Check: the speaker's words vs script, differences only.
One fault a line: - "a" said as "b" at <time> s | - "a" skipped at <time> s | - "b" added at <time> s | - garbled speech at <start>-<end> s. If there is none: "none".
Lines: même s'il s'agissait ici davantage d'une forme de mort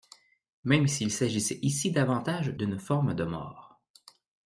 none